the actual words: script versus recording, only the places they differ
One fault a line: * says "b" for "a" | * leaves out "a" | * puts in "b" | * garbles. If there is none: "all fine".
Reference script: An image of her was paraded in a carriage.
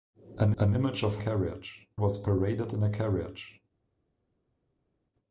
* puts in "an"
* says "carriage" for "her"